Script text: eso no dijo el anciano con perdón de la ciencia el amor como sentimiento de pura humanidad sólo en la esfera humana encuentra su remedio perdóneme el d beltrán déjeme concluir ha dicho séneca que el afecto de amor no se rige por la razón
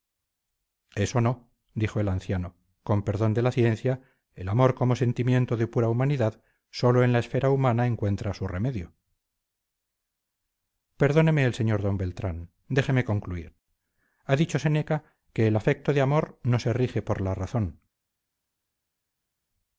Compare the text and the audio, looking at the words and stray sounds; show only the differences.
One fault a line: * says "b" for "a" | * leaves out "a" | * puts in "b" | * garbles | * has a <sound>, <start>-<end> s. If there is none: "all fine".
* puts in "sr"